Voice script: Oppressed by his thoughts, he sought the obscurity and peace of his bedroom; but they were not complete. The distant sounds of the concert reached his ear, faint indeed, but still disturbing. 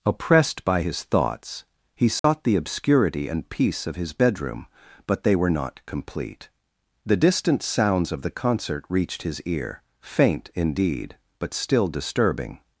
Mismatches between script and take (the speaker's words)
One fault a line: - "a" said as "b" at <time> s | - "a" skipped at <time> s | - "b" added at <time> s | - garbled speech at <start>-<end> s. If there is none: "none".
none